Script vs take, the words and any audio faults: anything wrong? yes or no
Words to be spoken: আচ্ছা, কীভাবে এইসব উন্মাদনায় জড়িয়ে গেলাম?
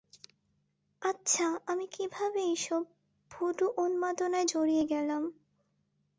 yes